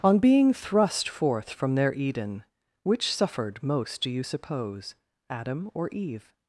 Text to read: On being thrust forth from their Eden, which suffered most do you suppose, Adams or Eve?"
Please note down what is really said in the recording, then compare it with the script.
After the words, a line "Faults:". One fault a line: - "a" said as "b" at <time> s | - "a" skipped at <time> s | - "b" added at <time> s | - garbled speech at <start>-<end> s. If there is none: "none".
On being thrust forth from their Eden, which suffered most do you suppose, Adam or Eve?"
Faults:
- "Adams" said as "Adam" at 5.3 s